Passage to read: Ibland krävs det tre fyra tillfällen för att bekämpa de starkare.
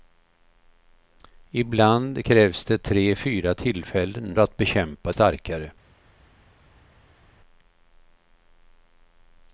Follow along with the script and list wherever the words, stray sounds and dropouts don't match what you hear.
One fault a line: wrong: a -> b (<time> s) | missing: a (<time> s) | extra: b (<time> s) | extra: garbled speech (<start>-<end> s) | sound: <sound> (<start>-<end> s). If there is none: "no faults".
missing: för (4.4 s)
missing: de (5.1 s)